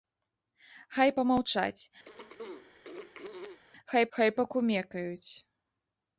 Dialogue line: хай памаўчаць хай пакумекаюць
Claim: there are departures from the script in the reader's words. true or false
true